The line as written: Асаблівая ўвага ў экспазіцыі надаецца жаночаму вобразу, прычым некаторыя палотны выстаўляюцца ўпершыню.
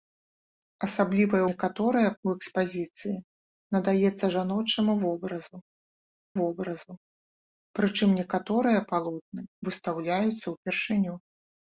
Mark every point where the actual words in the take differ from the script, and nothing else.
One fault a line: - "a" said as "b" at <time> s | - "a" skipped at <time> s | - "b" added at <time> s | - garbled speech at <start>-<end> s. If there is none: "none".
- "ўвага" said as "некаторыя" at 1.5 s
- "вобразу" added at 6.4 s